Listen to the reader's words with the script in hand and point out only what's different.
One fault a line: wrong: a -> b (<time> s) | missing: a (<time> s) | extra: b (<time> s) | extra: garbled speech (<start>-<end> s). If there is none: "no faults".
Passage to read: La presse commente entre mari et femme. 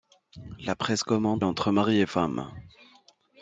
no faults